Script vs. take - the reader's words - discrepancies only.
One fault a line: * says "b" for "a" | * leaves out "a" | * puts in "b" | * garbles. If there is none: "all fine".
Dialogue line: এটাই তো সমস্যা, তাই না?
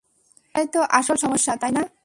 * puts in "আসল"